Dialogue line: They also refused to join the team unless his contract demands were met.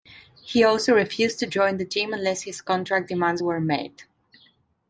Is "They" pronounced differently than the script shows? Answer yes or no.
yes